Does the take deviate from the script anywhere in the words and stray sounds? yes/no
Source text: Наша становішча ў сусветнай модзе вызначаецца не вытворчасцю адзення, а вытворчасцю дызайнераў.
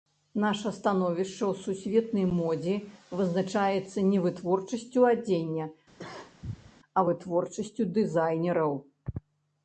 yes